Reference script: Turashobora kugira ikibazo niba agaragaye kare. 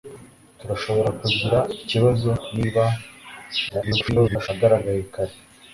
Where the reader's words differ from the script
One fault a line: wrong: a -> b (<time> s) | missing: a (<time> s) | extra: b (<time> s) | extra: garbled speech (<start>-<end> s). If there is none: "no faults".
extra: garbled speech (3.7-4.5 s)